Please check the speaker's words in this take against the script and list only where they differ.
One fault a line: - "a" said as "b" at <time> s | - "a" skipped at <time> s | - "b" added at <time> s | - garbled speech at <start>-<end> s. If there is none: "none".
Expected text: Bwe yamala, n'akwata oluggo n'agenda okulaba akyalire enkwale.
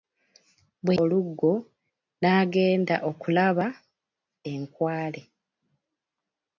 - "yamala n'akwata" skipped at 0.9 s
- "akyalire" skipped at 3.7 s